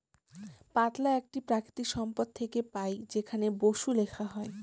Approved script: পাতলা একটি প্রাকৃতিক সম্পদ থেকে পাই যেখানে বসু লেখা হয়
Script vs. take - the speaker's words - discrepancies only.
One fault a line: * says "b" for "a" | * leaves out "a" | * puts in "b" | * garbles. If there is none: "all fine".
all fine